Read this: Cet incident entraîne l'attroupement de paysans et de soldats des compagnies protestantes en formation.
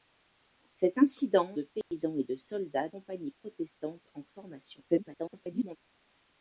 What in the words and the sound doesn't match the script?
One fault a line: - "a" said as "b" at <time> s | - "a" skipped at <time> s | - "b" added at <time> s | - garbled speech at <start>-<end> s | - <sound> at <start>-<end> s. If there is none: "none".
- "entraîne l'attroupement" skipped at 1.5 s
- dropout at 1.8-1.9 s
- "des" skipped at 2.9 s
- garbled speech at 4.9-5.8 s